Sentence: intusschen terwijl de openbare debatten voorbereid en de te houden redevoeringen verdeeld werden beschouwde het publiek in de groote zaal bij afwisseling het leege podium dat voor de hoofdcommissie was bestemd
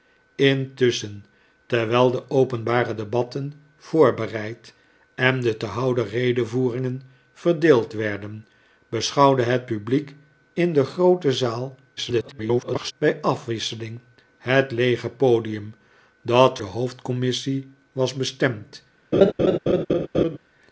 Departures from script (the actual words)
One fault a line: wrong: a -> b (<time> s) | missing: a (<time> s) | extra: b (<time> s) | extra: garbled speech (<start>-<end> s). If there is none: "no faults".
extra: garbled speech (12.0-12.9 s)
missing: voor (16.6 s)